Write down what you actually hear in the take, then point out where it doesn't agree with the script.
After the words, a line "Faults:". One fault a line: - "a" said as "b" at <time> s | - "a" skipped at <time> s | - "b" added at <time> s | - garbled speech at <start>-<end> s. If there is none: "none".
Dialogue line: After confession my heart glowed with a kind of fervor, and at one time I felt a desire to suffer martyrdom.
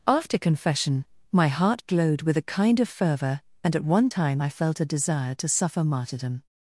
After confession my heart glowed with a kind of fervor, and at one time I felt a desire to suffer martyrdom.
Faults:
none